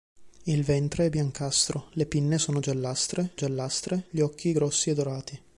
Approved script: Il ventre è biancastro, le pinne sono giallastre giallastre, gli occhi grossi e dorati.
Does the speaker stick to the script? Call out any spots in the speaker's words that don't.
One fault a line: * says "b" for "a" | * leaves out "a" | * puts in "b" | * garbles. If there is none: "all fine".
all fine